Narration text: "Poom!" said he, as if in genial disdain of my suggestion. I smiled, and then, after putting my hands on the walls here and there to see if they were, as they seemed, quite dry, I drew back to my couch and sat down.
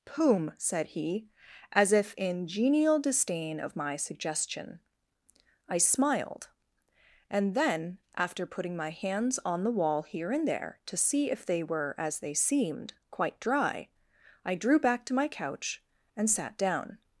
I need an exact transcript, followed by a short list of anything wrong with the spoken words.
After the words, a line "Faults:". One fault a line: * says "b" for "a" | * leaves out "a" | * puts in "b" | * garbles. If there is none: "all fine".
"Poom!" said he, as if in genial disdain of my suggestion. I smiled, and then, after putting my hands on the wall here and there to see if they were, as they seemed, quite dry, I drew back to my couch and sat down.
Faults:
* says "wall" for "walls"